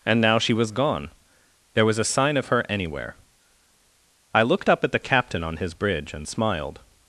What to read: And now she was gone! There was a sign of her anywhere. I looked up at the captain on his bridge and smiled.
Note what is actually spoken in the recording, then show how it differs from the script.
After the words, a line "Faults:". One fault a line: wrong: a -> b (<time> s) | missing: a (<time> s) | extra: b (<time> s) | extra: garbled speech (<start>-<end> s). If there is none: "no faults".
And now she was gone! There was a sign of her anywhere. I looked up at the captain on his bridge and smiled.
Faults:
no faults